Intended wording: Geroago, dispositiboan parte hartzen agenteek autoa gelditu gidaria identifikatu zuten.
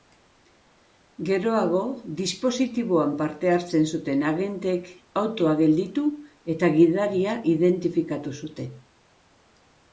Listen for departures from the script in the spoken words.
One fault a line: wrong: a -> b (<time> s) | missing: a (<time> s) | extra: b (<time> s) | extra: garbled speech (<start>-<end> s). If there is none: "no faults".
extra: zuten (4.0 s)
extra: eta (6.6 s)